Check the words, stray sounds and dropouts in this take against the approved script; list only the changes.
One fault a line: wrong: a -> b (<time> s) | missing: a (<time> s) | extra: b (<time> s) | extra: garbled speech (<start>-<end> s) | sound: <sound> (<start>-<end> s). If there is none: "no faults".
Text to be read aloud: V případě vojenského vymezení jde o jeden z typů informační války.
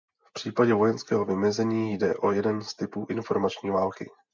no faults